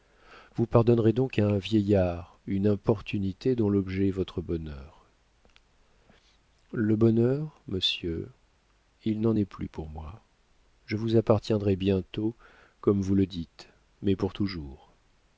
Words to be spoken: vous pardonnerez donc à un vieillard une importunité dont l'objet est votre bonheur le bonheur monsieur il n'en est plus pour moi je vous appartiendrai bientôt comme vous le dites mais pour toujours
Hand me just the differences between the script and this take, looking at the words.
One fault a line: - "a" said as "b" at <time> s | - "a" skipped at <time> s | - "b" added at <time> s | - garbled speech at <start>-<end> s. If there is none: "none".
none